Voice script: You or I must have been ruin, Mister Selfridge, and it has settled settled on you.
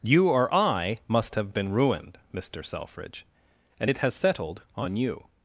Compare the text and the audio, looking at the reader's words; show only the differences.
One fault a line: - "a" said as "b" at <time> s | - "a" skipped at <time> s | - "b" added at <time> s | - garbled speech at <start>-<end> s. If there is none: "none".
- "ruin" said as "ruined" at 1.7 s
- "settled" skipped at 4.6 s